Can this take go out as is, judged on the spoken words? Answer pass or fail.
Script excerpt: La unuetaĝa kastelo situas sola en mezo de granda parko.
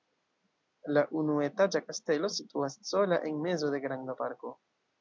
pass